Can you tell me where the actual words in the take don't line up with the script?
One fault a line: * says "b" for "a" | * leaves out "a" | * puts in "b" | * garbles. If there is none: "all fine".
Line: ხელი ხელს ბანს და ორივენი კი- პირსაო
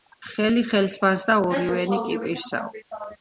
all fine